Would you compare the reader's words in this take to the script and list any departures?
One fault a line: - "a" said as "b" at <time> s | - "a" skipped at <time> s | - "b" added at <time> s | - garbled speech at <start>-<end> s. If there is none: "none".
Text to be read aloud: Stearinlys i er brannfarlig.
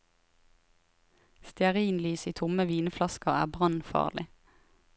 - "tomme vinflasker" added at 2.4 s